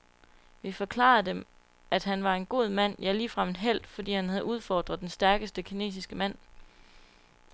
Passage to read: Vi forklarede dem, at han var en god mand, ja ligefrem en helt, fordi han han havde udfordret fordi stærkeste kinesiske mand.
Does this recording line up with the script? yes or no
no